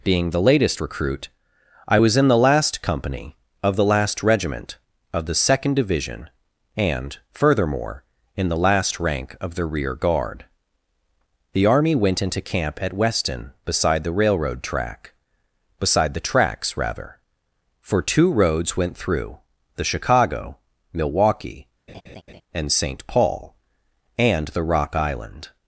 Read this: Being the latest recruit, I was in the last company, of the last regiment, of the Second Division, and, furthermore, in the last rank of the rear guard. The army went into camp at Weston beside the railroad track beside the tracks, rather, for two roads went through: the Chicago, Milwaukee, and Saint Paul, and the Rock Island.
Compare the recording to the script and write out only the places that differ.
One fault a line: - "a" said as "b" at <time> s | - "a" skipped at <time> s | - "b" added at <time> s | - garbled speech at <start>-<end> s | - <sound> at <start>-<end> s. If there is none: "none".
- laugh at 21.9-22.4 s